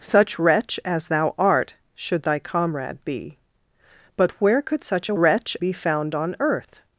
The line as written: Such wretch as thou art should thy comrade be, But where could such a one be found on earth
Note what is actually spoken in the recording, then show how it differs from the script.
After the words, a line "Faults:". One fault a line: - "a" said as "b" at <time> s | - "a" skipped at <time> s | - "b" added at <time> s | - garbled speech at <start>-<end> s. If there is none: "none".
Such wretch as thou art should thy comrade be, But where could such a wretch be found on earth
Faults:
- "one" said as "wretch" at 5.2 s